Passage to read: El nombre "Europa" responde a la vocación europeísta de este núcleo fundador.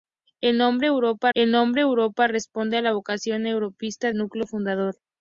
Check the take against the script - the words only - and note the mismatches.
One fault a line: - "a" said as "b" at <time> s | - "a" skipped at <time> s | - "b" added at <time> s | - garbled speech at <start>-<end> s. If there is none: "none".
- "el nombre Europa" added at 1.3 s
- "de este" skipped at 4.1 s